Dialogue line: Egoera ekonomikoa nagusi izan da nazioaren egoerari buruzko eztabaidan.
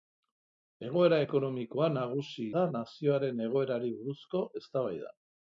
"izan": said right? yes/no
no